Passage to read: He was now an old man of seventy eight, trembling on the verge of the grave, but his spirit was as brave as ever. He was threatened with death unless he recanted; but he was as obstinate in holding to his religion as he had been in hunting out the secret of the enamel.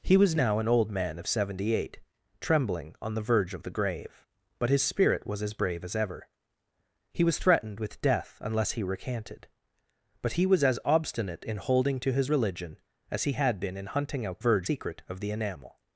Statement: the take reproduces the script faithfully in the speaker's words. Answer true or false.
false